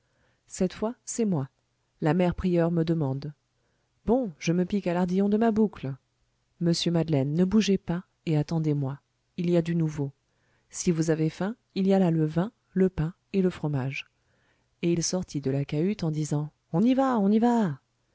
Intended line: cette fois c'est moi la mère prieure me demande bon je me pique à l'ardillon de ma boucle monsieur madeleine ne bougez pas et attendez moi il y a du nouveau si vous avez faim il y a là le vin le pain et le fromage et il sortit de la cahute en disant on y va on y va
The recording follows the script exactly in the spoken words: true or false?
true